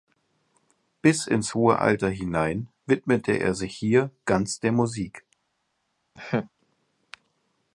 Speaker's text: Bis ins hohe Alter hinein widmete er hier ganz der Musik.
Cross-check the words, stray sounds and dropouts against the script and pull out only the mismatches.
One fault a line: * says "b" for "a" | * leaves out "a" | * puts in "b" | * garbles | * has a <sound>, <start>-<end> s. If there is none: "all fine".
* puts in "sich"
* has a laugh, 6.2-6.5 s